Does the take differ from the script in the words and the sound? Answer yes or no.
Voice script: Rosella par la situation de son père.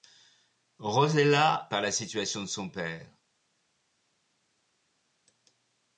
no